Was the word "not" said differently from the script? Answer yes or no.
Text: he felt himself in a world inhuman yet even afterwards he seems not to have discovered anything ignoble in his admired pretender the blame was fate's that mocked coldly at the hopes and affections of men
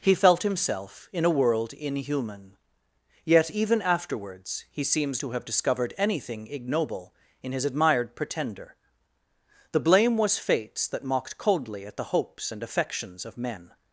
yes